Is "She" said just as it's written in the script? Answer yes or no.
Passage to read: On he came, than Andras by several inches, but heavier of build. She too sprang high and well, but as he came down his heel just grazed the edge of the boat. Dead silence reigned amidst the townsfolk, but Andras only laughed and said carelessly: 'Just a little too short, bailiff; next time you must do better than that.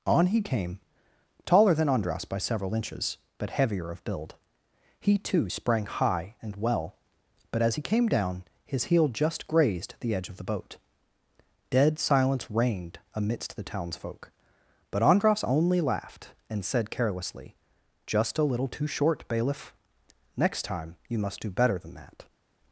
no